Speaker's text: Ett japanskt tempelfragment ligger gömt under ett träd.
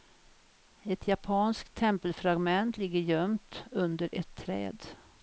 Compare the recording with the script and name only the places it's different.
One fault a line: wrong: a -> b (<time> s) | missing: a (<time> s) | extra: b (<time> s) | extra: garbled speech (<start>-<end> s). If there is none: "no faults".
no faults